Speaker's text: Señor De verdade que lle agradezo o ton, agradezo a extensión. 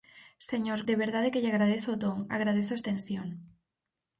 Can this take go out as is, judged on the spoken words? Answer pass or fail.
pass